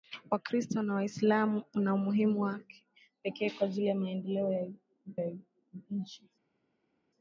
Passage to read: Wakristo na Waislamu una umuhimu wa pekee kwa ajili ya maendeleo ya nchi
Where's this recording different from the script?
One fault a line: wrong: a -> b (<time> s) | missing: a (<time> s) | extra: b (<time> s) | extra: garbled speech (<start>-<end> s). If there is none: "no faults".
extra: ya (5.2 s)